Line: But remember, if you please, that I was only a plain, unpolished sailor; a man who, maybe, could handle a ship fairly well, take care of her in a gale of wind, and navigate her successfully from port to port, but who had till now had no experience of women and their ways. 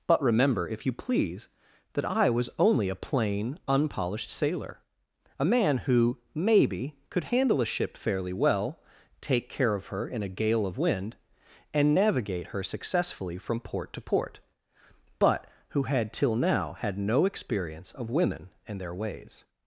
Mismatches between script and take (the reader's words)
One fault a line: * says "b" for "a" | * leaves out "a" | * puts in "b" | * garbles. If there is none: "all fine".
all fine